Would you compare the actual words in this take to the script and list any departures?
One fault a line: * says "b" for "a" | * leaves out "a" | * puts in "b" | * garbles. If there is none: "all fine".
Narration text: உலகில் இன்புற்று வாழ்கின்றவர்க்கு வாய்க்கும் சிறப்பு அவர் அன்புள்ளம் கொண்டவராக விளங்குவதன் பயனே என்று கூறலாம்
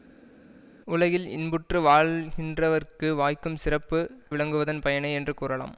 * leaves out "அவர் அன்புள்ளம் கொண்டவராக"